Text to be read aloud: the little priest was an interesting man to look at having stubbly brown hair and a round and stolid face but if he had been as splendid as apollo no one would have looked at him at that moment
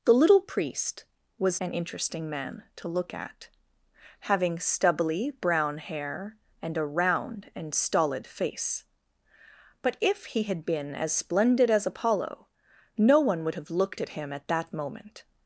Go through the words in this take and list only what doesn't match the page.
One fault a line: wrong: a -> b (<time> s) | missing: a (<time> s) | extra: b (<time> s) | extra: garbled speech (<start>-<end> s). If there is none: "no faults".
no faults